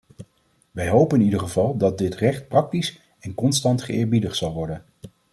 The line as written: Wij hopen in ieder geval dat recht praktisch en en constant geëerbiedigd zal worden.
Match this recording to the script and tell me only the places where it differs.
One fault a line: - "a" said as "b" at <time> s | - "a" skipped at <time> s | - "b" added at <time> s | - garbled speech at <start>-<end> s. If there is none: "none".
- "dit" added at 2.0 s
- "en" skipped at 3.4 s